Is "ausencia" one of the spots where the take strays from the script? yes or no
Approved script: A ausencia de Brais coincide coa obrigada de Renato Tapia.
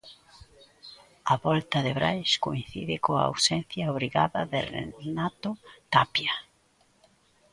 yes